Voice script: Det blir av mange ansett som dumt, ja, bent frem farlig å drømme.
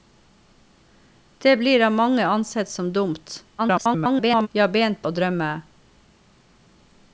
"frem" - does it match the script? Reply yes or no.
no